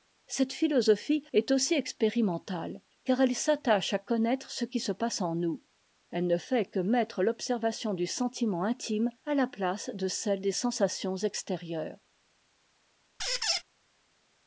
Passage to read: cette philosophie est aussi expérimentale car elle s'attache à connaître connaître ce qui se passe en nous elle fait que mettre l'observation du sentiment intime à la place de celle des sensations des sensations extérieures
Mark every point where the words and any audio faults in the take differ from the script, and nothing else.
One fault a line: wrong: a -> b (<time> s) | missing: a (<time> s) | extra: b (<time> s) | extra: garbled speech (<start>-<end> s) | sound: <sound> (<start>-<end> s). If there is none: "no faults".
missing: connaître (4.5 s)
extra: ne (6.2 s)
missing: des sensations (11.2 s)
sound: squeak (13.2-13.6 s)